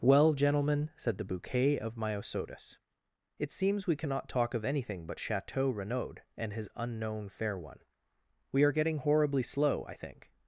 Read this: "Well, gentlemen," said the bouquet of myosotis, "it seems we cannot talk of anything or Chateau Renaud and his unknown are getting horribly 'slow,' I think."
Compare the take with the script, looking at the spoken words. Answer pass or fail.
fail